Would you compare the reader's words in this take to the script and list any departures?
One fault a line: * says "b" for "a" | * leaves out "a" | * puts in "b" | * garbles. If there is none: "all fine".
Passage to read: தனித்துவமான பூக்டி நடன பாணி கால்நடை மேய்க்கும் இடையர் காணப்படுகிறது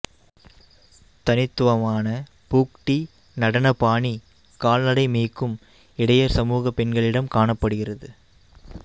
* puts in "சமூக பெண்களிடம்"